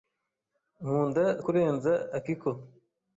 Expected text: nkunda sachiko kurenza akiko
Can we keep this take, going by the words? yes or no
no